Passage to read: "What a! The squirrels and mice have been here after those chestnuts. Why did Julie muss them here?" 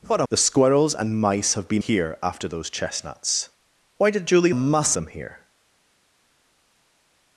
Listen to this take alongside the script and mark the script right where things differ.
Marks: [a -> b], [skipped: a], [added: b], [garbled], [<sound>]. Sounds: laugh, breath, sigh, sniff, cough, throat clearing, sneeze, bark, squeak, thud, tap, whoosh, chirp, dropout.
"What a! The squirrels and mice have been here after those chestnuts. Why did Julie muss them here?"